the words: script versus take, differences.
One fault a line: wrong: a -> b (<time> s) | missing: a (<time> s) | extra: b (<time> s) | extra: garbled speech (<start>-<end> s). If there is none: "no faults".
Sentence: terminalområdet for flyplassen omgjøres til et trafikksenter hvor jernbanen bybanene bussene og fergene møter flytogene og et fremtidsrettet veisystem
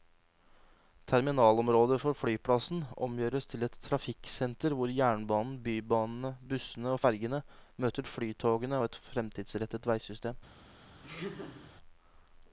no faults